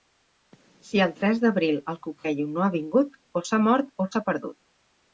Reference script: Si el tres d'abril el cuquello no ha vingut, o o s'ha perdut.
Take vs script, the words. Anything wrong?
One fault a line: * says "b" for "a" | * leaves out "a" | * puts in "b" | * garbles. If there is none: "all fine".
* puts in "s'ha mort"